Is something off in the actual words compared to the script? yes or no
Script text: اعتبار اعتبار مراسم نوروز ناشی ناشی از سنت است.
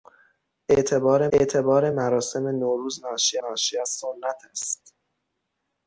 no